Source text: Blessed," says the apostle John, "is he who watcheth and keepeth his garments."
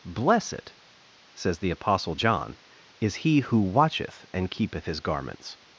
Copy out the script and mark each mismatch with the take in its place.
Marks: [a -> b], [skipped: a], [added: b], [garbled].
Blessed," says the apostle John, "is he who watcheth and keepeth his garments."